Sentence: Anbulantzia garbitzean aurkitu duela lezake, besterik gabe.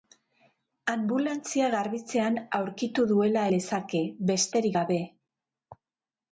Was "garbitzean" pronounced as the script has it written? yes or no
yes